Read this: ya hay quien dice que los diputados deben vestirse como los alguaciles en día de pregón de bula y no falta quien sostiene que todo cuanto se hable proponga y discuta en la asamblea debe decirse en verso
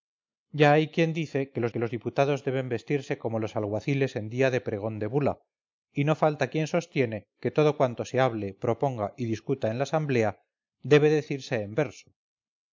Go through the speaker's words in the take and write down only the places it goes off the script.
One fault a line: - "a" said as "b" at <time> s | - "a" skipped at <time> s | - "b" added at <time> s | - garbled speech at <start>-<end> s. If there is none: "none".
- "que los" added at 1.7 s